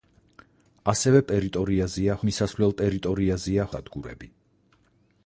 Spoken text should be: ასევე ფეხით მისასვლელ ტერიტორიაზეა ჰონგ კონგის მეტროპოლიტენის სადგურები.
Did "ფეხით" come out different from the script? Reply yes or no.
yes